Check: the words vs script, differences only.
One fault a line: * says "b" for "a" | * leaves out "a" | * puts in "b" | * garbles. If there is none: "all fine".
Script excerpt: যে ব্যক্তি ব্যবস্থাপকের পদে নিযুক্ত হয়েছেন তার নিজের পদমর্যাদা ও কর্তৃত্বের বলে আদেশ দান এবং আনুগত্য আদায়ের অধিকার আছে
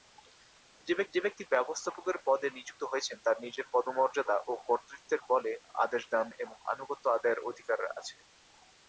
* puts in "যে"